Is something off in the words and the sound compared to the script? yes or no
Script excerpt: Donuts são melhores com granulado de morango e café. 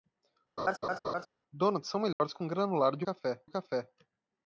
yes